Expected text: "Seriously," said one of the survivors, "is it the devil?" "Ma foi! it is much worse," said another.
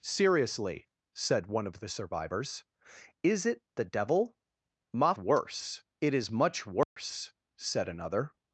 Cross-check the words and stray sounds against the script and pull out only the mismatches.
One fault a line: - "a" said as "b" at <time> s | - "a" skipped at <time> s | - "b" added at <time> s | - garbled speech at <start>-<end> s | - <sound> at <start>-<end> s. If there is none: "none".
- "foi" said as "worse" at 5.1 s
- dropout at 6.8-7.0 s